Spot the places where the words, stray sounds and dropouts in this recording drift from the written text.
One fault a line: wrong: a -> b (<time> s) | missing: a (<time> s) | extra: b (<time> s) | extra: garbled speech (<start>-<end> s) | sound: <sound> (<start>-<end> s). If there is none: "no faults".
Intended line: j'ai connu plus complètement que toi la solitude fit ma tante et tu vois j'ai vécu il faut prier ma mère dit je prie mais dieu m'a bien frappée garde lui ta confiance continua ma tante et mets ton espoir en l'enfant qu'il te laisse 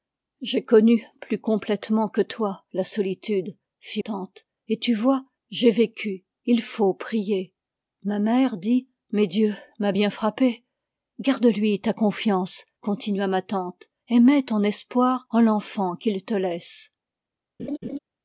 missing: ma (4.0 s)
missing: je prie (8.9 s)
sound: laugh (17.6-18.0 s)